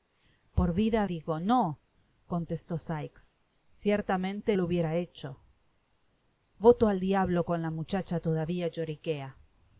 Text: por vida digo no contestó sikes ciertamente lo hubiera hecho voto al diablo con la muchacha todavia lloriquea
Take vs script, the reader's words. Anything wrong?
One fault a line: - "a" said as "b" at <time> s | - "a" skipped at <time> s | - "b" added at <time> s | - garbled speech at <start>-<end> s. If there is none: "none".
none